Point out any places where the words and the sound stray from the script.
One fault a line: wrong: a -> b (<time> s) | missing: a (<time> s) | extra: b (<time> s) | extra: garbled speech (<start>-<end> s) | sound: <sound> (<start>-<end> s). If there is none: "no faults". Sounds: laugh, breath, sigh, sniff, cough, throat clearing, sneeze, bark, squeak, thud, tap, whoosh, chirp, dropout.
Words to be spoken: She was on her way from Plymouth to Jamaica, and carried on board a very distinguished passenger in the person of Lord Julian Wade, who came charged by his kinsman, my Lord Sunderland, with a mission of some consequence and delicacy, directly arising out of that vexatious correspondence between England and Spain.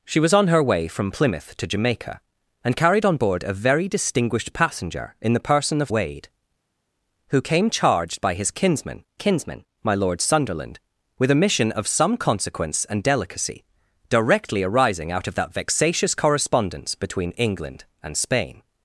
missing: Lord Julian (5.9 s)
extra: kinsman (9.1 s)